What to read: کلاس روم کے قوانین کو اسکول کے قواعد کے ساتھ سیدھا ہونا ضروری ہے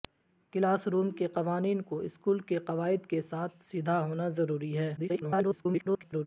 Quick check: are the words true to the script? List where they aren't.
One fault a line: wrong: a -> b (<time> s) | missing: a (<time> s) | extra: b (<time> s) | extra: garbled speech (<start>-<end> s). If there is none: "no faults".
extra: garbled speech (5.0-6.3 s)